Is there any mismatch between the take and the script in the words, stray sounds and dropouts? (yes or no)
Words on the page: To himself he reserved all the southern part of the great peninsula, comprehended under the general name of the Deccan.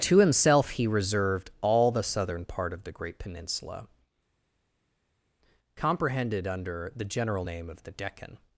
no